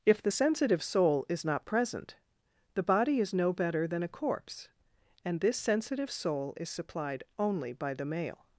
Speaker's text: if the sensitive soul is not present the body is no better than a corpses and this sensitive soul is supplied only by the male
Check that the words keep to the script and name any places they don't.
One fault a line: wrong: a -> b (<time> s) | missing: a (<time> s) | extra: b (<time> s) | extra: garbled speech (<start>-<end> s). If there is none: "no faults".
wrong: corpses -> corpse (4.1 s)